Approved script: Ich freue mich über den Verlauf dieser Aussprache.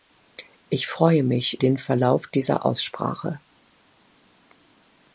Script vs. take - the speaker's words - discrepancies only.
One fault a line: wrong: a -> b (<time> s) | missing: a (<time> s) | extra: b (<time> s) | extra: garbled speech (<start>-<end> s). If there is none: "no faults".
missing: über (1.6 s)